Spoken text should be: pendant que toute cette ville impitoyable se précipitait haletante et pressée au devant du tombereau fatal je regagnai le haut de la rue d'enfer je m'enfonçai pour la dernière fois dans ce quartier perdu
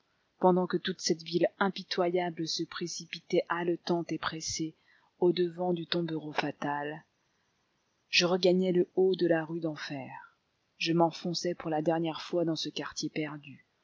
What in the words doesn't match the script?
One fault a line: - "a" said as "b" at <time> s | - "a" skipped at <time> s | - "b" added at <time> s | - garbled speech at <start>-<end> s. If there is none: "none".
none